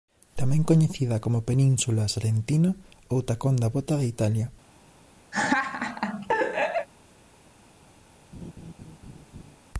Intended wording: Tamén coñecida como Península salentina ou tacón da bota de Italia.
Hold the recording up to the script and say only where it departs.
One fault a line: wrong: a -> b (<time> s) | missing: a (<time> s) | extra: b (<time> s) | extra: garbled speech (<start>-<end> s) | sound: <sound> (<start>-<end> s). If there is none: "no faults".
sound: laugh (5.3-6.9 s)
sound: laugh (8.3-9.6 s)